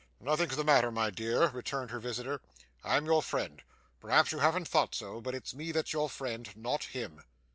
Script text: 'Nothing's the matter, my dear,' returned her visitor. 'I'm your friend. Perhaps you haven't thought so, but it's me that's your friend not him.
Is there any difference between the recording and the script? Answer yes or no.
no